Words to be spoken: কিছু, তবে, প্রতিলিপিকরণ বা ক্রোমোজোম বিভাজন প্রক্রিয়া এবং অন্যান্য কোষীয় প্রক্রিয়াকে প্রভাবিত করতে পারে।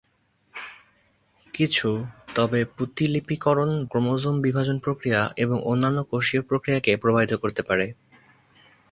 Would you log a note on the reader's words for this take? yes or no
yes